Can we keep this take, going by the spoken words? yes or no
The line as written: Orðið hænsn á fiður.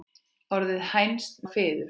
yes